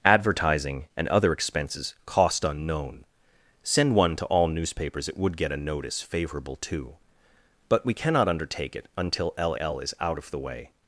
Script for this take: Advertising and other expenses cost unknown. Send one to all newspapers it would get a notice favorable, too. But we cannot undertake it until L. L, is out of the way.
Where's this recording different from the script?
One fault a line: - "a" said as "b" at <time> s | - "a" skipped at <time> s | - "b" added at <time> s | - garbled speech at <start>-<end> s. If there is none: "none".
none